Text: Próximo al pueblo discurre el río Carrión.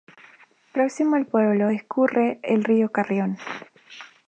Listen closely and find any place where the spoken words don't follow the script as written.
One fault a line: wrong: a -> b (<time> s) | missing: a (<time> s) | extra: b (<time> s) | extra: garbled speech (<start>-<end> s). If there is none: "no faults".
no faults